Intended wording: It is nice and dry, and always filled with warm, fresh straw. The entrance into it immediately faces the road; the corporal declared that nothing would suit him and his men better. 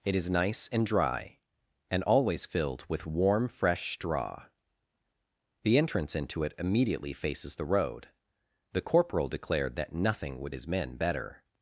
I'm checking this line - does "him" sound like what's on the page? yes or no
no